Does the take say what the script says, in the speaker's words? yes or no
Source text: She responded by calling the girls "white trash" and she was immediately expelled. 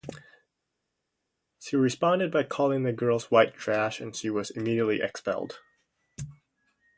yes